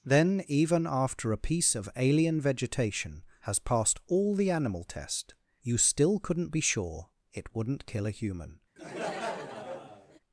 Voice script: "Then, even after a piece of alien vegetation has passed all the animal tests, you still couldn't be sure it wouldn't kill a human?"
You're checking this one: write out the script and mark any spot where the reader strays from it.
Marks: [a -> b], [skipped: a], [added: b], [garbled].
"Then, even after a piece of alien vegetation has passed all the animal [tests, -> test] you still couldn't be sure it wouldn't kill a human?"